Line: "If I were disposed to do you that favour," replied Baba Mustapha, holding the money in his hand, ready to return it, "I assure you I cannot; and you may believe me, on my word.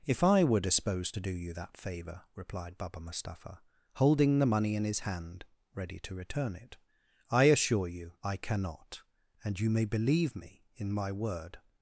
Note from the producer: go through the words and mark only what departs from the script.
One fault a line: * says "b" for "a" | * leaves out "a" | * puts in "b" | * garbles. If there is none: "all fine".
* says "in" for "on"